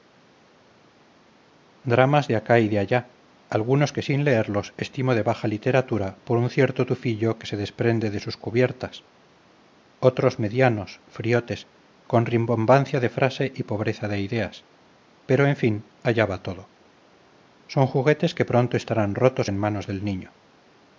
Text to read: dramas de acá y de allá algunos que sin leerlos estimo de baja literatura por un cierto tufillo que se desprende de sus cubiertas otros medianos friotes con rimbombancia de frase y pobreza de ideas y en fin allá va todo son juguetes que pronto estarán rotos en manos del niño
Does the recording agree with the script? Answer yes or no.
no